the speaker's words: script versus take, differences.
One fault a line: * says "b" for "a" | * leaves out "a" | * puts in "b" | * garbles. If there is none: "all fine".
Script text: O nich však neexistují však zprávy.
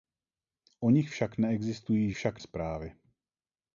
all fine